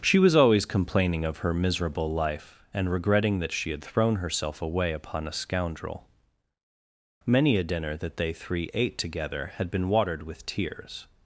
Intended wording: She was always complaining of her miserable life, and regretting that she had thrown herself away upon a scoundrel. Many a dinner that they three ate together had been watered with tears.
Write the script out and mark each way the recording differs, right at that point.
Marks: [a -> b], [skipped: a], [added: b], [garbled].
She was always complaining of her miserable life, and regretting that she had thrown herself away upon a scoundrel. Many a dinner that they three ate together had been watered with tears.